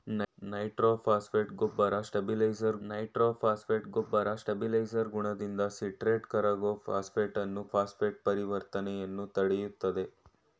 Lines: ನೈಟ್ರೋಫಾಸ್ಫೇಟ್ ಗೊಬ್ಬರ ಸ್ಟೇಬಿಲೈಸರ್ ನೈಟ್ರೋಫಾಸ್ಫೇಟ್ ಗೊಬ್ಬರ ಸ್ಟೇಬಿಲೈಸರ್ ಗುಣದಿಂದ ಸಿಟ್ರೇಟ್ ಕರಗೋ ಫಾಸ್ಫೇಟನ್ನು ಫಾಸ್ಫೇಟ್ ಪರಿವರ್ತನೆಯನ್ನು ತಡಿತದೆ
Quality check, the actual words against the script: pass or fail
pass